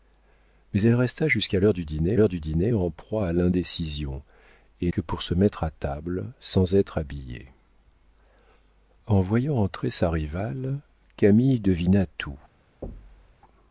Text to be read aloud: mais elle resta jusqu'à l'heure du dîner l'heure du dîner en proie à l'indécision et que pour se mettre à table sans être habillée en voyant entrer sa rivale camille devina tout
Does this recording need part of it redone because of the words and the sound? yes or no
yes